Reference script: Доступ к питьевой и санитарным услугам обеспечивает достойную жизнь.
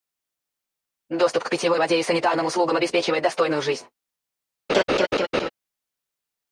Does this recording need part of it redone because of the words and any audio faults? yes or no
yes